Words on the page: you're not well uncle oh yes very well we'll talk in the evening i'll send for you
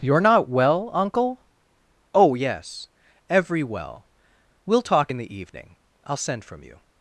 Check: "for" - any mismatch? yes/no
yes